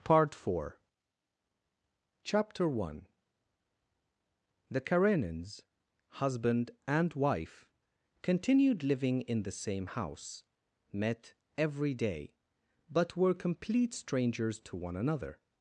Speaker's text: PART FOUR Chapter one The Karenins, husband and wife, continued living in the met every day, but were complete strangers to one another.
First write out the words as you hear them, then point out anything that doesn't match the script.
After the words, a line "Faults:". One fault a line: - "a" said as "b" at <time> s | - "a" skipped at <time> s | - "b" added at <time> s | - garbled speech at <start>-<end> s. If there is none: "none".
PART FOUR Chapter one The Karenins, husband and wife, continued living in the same house, met every day, but were complete strangers to one another.
Faults:
- "same house" added at 9.5 s